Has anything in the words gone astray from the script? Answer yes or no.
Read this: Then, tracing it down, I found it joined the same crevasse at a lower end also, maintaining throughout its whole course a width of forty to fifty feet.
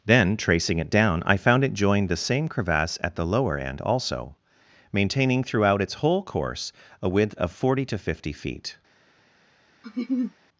yes